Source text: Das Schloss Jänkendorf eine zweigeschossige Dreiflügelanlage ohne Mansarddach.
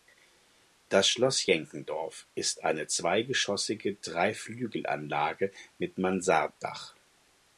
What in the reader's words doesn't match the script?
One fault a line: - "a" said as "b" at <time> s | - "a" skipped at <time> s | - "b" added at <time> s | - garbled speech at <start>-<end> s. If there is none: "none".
- "ist" added at 2.4 s
- "ohne" said as "mit" at 5.8 s